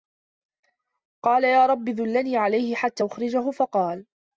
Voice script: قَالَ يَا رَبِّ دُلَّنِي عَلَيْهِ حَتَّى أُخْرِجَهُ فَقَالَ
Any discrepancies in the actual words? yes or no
no